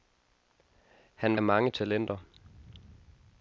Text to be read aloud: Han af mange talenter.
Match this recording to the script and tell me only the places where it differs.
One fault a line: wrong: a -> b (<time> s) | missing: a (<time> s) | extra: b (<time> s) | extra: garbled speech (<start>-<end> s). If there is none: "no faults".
no faults